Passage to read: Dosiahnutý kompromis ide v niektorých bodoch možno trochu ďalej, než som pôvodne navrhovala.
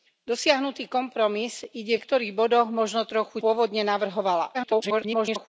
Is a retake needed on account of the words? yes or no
yes